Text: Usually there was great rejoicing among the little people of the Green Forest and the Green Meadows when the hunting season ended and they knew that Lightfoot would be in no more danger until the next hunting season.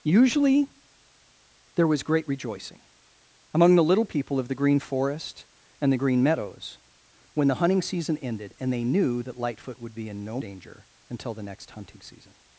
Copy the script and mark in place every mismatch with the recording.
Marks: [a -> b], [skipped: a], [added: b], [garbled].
Usually there was great rejoicing among the little people of the Green Forest and the Green Meadows when the hunting season ended and they knew that Lightfoot would be in no [skipped: more] danger until the next hunting season.